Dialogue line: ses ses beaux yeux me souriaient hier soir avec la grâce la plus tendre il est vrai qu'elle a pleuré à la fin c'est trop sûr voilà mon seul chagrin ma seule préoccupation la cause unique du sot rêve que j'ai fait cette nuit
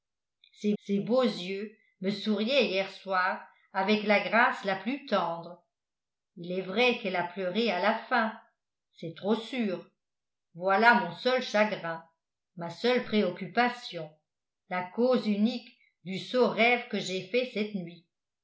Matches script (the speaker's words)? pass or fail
pass